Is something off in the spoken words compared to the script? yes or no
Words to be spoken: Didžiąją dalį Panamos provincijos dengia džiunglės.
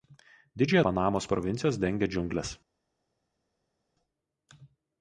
yes